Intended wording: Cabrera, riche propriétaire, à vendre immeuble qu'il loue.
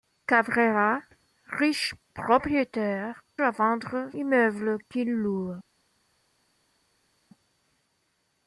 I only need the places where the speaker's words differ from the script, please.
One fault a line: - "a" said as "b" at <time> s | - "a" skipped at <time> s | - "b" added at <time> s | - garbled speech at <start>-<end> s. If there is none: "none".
none